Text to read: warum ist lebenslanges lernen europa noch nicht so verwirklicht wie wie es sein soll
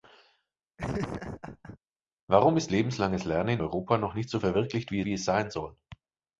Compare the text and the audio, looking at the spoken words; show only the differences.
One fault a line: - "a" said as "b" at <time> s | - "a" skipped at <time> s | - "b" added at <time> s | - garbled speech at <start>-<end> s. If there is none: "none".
none